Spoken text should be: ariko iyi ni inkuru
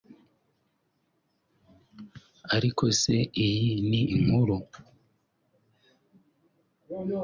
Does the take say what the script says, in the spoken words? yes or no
no